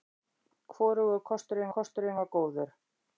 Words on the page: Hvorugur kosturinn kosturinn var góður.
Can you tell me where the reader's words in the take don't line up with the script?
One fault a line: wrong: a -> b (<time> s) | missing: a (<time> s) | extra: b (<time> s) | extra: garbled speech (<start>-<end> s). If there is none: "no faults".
no faults